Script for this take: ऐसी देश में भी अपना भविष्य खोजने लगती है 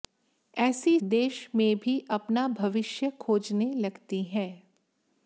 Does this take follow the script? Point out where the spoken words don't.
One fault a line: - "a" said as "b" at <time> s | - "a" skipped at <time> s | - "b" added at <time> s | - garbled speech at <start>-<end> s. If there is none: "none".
none